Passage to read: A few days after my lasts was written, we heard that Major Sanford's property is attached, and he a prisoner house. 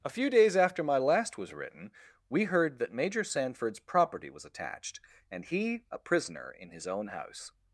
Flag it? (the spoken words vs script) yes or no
yes